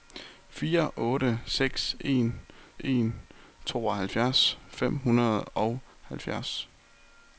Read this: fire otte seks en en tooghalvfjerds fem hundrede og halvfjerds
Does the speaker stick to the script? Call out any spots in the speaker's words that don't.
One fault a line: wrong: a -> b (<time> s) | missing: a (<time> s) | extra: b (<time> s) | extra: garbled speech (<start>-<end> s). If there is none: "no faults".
no faults